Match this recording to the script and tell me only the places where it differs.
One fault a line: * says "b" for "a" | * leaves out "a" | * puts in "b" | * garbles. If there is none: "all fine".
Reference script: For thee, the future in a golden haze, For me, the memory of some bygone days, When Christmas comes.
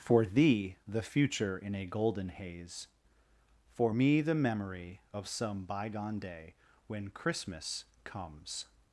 * says "day" for "days"